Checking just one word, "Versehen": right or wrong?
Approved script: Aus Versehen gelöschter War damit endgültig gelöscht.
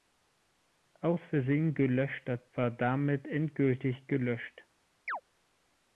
right